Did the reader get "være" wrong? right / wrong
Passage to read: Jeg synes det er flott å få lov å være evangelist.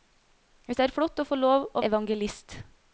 wrong